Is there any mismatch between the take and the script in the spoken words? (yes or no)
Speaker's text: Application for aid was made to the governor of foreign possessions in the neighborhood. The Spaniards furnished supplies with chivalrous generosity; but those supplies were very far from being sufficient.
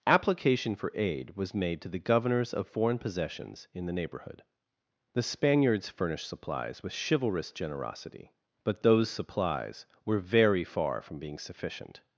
yes